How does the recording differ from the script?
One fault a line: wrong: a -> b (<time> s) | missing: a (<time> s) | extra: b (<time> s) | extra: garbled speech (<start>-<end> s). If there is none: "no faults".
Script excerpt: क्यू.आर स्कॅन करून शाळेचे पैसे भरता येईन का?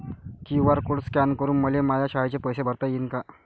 extra: कोड (0.8 s)
extra: मले माया (1.6 s)